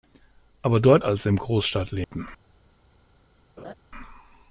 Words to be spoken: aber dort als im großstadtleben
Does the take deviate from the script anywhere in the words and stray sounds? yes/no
yes